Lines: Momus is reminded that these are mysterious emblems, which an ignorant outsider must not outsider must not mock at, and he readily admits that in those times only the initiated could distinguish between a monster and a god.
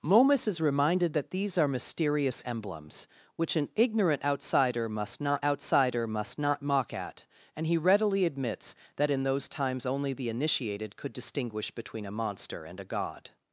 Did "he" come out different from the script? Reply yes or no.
no